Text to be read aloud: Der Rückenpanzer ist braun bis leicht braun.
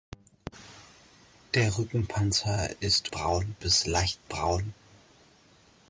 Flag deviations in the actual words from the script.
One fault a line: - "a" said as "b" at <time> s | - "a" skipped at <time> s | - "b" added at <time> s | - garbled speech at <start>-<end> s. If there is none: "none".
none